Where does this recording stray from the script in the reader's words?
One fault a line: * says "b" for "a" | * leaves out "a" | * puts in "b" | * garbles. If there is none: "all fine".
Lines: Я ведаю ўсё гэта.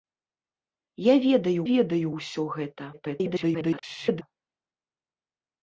* puts in "ведаю"
* garbles